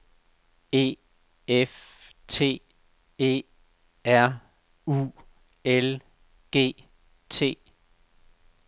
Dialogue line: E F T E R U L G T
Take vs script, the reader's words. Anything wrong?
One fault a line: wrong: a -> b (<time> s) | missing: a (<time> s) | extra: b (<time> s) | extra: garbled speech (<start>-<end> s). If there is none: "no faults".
no faults